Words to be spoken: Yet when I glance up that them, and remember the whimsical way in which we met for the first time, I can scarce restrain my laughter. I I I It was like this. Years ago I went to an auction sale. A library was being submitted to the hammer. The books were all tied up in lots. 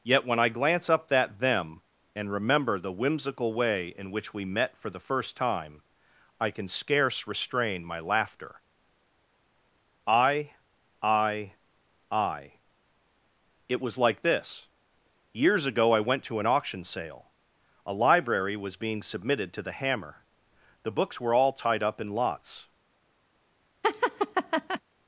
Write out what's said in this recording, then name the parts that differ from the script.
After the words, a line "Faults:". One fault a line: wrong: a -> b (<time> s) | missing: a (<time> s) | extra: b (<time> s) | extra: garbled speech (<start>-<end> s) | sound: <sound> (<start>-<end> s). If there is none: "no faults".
Yet when I glance up that them, and remember the whimsical way in which we met for the first time, I can scarce restrain my laughter. I I I It was like this. Years ago I went to an auction sale. A library was being submitted to the hammer. The books were all tied up in lots.
Faults:
sound: laugh (23.8-24.8 s)